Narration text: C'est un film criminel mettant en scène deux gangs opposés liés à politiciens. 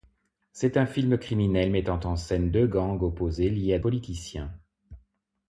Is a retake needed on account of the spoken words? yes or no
no